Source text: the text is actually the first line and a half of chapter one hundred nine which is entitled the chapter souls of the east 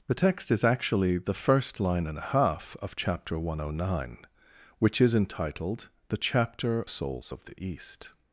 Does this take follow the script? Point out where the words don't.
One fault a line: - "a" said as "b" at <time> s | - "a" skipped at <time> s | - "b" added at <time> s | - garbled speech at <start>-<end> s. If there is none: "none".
none